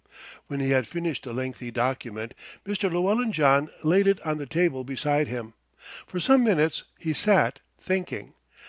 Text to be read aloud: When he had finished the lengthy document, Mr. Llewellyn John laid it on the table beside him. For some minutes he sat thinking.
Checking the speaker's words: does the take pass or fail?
pass